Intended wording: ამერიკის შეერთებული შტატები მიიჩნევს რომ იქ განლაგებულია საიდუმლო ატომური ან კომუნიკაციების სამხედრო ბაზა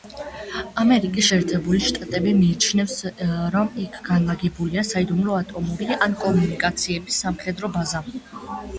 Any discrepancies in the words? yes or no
no